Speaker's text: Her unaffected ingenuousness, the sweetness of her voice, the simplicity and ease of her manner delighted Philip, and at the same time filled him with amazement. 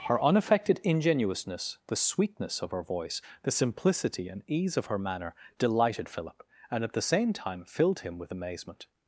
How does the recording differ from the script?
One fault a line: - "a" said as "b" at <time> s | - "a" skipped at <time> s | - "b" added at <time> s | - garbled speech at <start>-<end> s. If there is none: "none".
none